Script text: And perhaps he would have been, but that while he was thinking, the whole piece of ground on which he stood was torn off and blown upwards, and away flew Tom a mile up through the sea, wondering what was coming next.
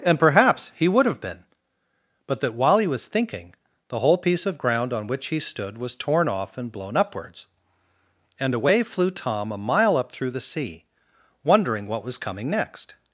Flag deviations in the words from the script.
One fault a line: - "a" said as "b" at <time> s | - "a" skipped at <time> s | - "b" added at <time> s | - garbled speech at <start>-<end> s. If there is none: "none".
none